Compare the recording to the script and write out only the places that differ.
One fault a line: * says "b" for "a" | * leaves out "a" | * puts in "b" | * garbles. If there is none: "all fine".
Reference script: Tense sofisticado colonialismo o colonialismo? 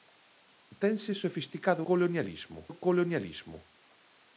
all fine